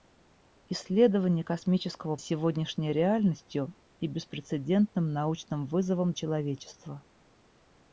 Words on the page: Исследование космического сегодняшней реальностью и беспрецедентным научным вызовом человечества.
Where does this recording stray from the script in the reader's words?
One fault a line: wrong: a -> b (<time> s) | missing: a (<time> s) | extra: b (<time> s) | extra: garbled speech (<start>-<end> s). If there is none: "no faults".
no faults